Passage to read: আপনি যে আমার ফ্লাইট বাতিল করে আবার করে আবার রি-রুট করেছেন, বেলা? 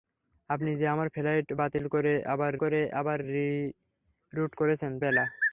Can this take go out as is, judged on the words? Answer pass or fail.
pass